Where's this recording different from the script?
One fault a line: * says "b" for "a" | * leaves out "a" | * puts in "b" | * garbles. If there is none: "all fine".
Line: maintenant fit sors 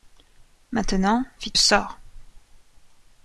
all fine